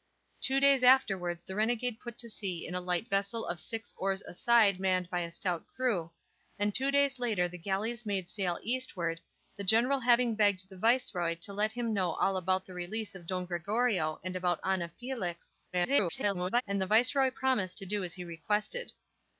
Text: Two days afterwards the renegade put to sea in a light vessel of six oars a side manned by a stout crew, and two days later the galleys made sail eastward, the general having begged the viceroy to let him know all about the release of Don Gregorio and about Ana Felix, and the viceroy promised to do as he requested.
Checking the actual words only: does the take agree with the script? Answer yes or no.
no